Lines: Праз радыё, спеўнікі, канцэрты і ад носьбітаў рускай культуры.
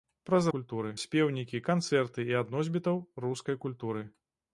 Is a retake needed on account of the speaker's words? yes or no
yes